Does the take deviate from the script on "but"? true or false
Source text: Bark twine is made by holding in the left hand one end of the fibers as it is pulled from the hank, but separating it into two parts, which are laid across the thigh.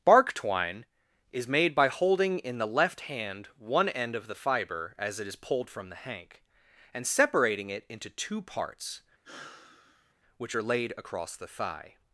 true